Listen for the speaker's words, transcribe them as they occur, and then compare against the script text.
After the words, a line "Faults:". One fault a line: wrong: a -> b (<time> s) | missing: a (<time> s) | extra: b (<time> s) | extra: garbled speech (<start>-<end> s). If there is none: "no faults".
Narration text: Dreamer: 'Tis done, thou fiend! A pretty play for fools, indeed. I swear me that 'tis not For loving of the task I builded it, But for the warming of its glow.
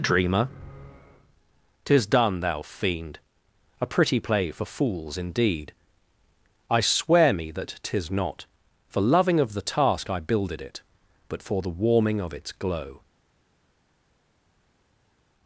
Dreamer: 'Tis done, thou fiend! A pretty play for fools, indeed. I swear me that 'tis not For loving of the task I builded it, But for the warming of its glow.
Faults:
no faults